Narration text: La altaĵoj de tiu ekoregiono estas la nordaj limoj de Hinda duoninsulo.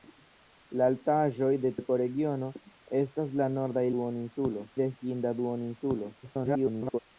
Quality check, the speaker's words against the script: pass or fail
fail